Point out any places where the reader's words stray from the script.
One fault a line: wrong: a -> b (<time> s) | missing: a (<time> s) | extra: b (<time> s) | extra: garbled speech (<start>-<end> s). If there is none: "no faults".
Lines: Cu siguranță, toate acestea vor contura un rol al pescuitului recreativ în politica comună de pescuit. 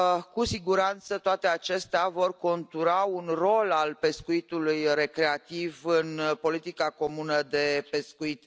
no faults